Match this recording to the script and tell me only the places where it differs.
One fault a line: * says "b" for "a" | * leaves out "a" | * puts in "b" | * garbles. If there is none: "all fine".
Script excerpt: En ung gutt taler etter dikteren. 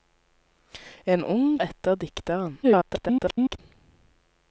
* leaves out "gutt taler"
* garbles